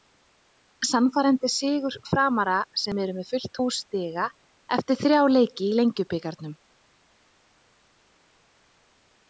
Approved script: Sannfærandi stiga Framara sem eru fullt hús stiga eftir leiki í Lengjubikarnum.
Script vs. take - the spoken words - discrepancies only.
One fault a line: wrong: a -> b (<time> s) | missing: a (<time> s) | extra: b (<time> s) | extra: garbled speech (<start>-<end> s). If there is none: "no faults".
wrong: stiga -> sigur (1.6 s)
extra: með (3.2 s)
extra: þrjá (5.1 s)